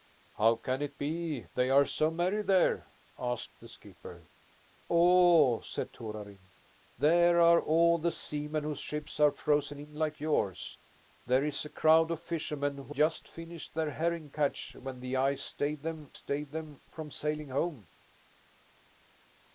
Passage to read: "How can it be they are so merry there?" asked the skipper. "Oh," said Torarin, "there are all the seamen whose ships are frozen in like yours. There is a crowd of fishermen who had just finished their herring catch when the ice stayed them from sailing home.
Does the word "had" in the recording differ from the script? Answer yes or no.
yes